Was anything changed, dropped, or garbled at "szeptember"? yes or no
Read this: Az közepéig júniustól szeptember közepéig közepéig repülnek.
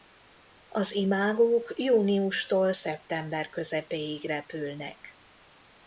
no